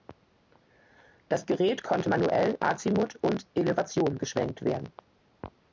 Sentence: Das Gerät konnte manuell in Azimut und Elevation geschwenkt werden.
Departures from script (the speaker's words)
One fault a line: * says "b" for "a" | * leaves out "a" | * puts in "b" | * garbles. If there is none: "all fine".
* leaves out "in"